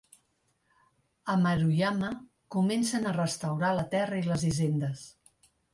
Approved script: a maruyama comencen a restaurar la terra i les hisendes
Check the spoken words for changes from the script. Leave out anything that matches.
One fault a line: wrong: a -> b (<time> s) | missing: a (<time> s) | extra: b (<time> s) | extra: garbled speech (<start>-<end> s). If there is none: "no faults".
no faults